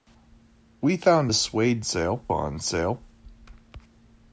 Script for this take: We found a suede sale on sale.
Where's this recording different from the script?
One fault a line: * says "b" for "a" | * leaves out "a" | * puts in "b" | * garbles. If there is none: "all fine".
all fine